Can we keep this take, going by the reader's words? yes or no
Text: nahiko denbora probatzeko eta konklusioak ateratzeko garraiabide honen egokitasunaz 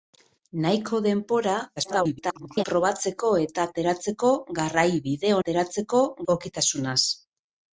no